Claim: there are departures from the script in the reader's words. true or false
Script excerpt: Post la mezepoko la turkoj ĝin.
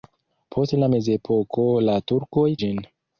false